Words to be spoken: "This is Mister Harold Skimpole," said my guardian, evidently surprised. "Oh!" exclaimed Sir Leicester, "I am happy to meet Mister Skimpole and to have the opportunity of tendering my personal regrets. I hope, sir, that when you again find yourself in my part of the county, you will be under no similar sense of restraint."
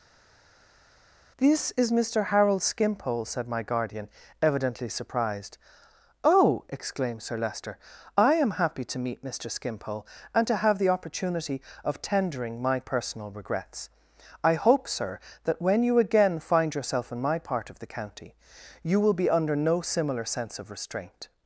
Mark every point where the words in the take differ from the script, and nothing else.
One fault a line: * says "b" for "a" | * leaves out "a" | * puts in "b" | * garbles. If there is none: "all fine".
all fine